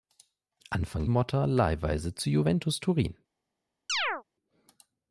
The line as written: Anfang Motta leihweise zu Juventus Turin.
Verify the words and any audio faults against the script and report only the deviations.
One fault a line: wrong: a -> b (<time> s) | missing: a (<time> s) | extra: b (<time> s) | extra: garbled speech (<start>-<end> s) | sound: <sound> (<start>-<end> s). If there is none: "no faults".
sound: chirp (3.9-4.2 s)